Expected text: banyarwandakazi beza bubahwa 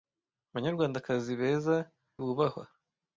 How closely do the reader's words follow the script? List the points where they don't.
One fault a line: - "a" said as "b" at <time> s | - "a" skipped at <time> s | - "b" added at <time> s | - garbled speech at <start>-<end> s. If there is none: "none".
none